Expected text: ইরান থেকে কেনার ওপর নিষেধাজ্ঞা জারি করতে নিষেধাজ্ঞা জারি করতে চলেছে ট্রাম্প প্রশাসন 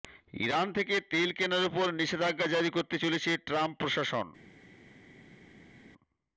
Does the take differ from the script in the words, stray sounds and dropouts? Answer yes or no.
yes